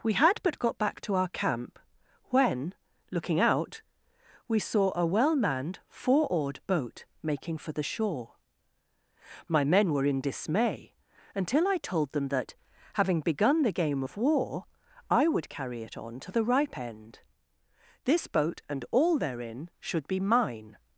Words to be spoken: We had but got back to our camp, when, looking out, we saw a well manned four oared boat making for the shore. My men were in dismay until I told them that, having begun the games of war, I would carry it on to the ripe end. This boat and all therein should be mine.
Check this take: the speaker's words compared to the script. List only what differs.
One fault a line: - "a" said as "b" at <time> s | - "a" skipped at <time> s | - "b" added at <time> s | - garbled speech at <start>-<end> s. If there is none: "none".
- "games" said as "game" at 13.7 s